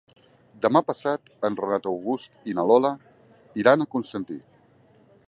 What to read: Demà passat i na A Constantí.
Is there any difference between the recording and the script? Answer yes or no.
yes